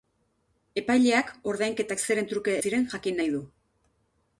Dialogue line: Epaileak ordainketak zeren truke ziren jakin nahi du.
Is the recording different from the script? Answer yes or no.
no